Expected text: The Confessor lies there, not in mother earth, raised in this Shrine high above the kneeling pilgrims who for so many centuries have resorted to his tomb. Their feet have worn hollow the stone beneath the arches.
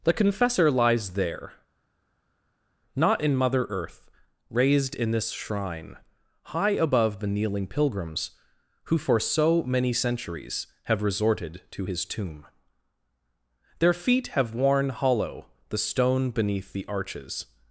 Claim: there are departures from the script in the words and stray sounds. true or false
false